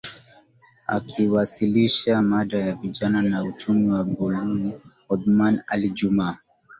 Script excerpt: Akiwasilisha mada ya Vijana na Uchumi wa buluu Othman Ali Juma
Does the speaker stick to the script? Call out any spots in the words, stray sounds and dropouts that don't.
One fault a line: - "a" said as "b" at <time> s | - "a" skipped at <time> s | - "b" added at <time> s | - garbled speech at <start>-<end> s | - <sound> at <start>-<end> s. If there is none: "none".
none